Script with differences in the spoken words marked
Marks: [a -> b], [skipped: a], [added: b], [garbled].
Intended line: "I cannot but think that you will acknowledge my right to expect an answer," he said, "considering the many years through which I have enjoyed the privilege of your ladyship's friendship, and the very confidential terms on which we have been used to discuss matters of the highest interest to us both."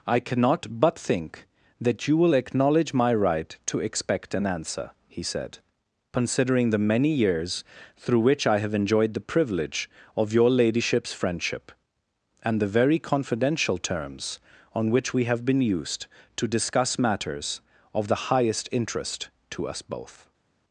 "I cannot but think that you will acknowledge my right to expect an answer," he said, "considering the many years through which I have enjoyed the privilege of your ladyship's friendship, and the very confidential terms on which we have been used to discuss matters of the highest interest to us both."